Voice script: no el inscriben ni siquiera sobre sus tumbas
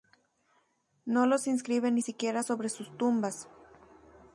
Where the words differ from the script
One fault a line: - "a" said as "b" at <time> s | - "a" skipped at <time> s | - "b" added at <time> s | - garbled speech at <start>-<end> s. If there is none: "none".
- "el" said as "los" at 1.3 s